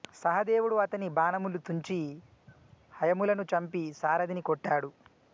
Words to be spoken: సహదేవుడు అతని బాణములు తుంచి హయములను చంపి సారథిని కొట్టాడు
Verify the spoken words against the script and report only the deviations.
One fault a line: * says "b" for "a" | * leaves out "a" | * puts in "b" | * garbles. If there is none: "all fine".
all fine